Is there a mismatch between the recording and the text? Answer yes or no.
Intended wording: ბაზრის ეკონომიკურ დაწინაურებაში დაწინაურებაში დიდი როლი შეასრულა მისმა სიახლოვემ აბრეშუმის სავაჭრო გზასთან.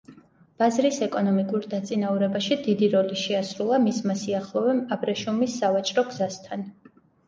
yes